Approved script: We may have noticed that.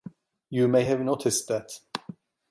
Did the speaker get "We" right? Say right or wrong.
wrong